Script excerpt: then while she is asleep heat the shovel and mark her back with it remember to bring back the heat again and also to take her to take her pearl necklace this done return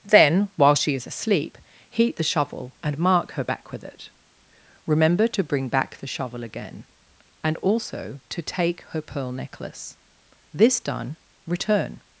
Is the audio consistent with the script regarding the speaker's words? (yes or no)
no